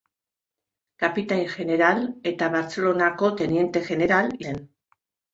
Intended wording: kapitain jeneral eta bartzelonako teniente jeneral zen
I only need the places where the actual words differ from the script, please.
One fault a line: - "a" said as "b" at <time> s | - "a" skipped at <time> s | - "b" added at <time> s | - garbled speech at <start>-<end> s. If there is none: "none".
none